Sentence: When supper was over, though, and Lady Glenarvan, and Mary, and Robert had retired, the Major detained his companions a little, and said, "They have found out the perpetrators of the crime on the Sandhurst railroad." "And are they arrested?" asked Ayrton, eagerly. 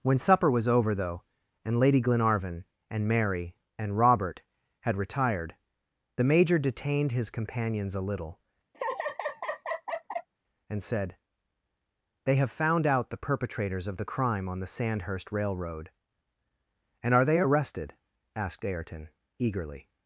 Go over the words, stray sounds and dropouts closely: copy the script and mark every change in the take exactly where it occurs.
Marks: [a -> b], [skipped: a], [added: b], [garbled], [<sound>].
When supper was over, though, and Lady Glenarvan, and Mary, and Robert had retired, the Major detained his companions a little, [laugh] and said, "They have found out the perpetrators of the crime on the Sandhurst railroad." "And are they arrested?" asked Ayrton, eagerly.